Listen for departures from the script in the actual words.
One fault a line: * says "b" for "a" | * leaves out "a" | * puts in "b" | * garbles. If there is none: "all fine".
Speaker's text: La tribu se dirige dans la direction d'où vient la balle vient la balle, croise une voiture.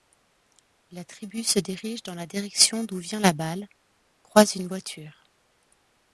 * leaves out "vient la balle"